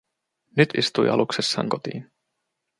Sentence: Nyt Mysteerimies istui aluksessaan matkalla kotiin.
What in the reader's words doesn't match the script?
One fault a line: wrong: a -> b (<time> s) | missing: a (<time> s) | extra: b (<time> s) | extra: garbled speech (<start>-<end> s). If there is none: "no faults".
missing: Mysteerimies (0.8 s)
missing: matkalla (1.7 s)